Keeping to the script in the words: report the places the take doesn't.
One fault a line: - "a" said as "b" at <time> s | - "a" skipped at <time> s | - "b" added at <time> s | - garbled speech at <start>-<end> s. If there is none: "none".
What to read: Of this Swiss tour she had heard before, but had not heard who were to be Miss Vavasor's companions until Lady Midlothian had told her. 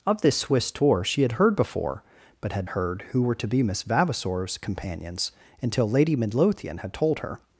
- "not" skipped at 2.7 s